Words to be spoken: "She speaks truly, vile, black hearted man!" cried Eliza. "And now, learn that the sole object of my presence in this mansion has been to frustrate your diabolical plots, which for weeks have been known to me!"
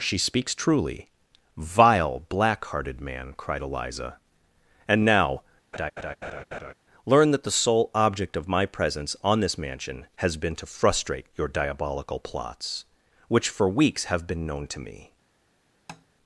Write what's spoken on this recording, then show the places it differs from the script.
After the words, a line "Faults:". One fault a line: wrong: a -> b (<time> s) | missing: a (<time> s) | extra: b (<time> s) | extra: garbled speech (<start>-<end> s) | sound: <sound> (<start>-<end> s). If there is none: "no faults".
"She speaks truly, vile, black hearted man!" cried Eliza. "And now, learn that the sole object of my presence on this mansion has been to frustrate your diabolical plots, which for weeks have been known to me!"
Faults:
sound: laugh (5.7-6.7 s)
wrong: in -> on (9.2 s)
sound: tap (15.9-16.1 s)